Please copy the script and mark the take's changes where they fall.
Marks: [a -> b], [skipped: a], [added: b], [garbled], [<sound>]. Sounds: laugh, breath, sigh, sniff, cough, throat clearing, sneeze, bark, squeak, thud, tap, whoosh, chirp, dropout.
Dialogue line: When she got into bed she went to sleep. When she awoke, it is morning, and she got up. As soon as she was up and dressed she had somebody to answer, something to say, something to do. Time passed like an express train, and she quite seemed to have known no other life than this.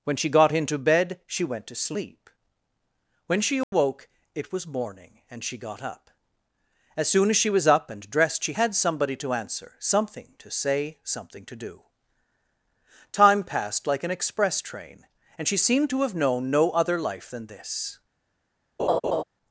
When she got into bed she went to sleep. When she awoke, [dropout] it [is -> was] morning, and she got up. As soon as she was up and dressed she had somebody to answer, something to say, something to do. Time passed like an express train, and she [skipped: quite] seemed to have known no other life than this. [laugh]